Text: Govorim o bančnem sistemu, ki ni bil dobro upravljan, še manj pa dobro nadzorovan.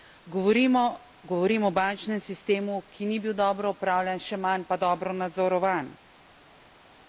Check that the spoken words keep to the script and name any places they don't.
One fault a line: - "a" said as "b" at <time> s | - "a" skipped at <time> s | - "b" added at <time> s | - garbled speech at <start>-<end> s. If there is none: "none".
none